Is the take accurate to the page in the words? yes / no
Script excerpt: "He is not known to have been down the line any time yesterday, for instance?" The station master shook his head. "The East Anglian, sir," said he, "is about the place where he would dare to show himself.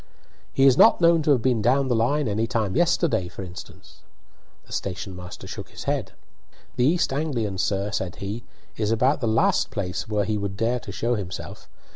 no